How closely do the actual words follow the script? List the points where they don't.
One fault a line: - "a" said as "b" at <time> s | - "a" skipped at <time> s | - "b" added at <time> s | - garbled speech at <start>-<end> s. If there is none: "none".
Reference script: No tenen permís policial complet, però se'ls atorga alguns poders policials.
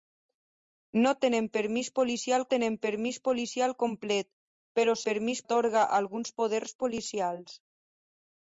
- "tenen permís policial" added at 2.5 s
- "se'ls" said as "permís" at 5.1 s